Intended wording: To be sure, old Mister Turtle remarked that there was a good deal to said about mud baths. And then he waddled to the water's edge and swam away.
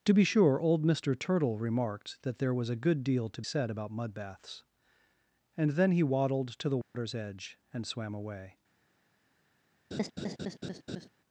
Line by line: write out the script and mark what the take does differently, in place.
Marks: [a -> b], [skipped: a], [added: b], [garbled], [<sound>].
To be sure, old Mister Turtle remarked that there was a good deal to said about mud baths. And then he waddled to the water's [dropout] edge and swam away. [laugh]